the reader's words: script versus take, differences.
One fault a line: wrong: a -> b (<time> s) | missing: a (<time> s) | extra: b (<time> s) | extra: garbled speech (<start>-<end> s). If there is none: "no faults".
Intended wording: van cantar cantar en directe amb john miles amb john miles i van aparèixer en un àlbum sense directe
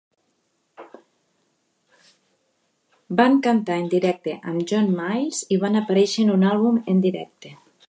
missing: cantar (3.8 s)
missing: amb john miles (5.5 s)
wrong: sense -> en (6.9 s)